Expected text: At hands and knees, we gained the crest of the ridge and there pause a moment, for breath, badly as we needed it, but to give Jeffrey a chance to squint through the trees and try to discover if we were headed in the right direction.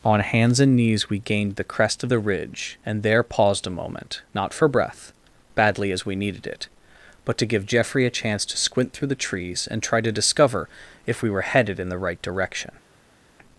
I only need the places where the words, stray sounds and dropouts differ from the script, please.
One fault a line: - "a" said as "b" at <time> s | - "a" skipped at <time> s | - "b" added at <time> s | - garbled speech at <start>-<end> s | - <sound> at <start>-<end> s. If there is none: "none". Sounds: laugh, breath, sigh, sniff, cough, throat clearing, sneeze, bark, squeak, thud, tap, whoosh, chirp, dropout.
- "At" said as "On" at 0.0 s
- "pause" said as "paused" at 3.2 s
- "not" added at 4.3 s